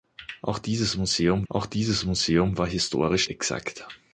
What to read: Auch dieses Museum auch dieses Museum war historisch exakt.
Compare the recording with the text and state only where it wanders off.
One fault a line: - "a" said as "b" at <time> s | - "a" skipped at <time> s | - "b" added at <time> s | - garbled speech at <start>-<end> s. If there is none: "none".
none